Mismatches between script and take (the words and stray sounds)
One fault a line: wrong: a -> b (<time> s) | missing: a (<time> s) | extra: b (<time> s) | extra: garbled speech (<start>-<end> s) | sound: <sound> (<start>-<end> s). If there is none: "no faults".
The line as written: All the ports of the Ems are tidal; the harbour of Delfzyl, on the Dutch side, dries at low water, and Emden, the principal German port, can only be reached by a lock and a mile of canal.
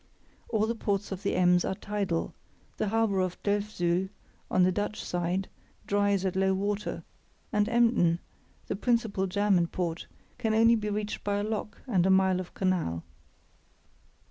no faults